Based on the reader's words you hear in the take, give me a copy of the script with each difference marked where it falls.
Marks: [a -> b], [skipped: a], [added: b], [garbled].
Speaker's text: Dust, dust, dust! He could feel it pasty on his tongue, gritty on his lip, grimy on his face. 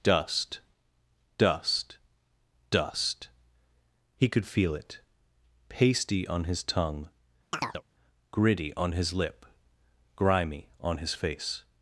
Dust, dust, dust! He could feel it pasty on his tongue, gritty on his lip, grimy on his face.